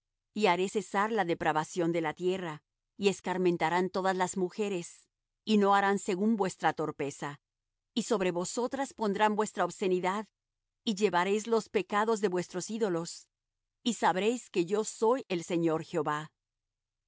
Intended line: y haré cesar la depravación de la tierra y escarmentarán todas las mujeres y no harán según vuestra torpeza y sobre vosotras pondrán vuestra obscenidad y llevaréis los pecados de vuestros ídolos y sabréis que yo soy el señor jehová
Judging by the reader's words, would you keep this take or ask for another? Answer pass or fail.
pass